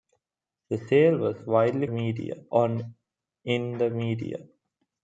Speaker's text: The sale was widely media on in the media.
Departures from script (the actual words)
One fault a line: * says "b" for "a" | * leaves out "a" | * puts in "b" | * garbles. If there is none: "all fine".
all fine